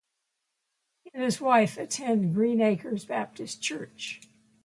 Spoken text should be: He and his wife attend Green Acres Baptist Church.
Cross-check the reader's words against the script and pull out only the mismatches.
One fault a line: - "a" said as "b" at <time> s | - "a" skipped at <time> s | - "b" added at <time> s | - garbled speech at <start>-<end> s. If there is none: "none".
none